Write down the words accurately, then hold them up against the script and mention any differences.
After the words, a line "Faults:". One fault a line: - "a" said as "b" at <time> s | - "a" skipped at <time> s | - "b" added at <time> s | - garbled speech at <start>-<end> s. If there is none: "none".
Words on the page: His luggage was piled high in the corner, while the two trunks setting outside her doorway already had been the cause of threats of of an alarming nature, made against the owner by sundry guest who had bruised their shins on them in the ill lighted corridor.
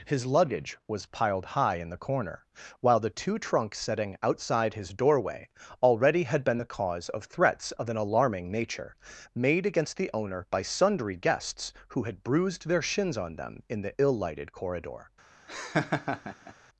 His luggage was piled high in the corner, while the two trunks setting outside his doorway already had been the cause of threats of an alarming nature, made against the owner by sundry guests who had bruised their shins on them in the ill lighted corridor.
Faults:
- "her" said as "his" at 4.7 s
- "of" skipped at 7.9 s
- "guest" said as "guests" at 11.2 s